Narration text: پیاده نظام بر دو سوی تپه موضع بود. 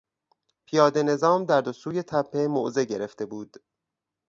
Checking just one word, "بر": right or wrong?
wrong